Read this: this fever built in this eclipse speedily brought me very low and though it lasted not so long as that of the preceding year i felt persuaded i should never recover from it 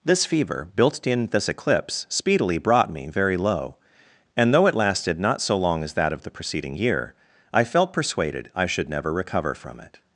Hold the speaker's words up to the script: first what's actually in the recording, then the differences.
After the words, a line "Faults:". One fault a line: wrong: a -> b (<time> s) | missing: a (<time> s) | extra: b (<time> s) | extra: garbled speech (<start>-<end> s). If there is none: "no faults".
this fever built in this eclipse speedily brought me very low and though it lasted not so long as that of the preceding year i felt persuaded i should never recover from it
Faults:
no faults